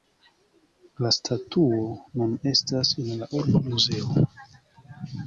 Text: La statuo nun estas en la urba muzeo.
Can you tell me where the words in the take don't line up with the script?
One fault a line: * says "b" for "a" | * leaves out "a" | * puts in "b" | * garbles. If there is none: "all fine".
all fine